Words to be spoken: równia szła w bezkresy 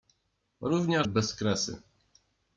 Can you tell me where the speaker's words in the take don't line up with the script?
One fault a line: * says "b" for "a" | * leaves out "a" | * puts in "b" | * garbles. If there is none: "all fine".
* leaves out "szła w"